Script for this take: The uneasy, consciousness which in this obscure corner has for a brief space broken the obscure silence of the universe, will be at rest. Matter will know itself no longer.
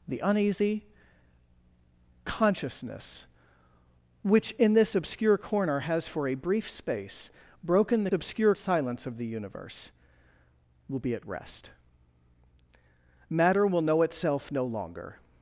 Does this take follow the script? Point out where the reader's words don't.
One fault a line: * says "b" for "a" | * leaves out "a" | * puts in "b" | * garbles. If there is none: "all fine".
all fine